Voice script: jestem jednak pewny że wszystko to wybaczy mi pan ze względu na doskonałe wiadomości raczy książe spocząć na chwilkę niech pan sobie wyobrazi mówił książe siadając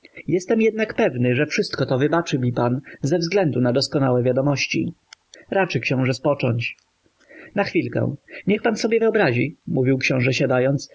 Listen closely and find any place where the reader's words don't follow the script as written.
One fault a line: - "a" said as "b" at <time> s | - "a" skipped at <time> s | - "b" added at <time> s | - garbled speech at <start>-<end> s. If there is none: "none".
none